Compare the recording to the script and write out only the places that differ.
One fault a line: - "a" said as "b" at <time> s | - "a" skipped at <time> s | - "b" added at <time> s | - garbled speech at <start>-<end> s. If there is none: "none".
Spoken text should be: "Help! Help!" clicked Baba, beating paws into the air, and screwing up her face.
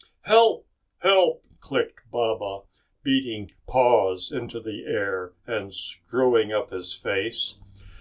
- "her" said as "his" at 6.7 s